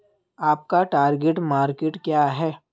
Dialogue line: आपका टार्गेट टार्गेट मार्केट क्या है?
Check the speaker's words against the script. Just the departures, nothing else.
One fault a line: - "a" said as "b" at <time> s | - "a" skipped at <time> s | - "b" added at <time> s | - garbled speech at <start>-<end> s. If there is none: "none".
- "टार्गेट" skipped at 1.4 s